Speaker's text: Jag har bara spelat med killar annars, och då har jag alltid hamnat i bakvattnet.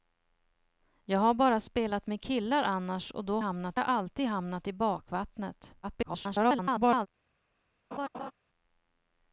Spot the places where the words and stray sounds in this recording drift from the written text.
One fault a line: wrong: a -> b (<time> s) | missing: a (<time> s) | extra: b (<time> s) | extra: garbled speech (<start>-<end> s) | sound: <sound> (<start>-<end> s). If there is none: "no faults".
wrong: har -> hamnat (3.4 s)
extra: garbled speech (5.8-7.1 s)
sound: laugh (7.9-8.3 s)